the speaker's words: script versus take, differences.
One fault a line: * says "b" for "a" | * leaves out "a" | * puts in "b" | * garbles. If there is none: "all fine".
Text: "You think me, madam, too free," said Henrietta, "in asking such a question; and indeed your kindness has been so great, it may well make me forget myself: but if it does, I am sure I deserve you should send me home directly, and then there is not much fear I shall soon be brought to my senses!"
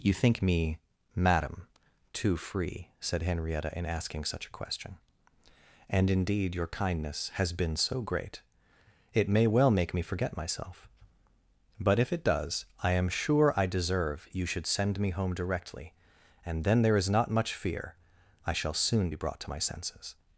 all fine